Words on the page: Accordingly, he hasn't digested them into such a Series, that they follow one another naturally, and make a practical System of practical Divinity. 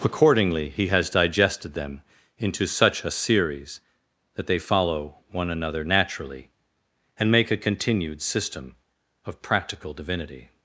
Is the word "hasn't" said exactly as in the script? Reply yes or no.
no